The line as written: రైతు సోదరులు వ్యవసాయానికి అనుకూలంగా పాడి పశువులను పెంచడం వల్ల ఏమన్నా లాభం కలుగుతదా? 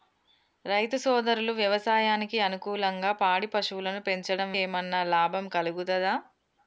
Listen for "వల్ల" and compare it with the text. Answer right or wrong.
wrong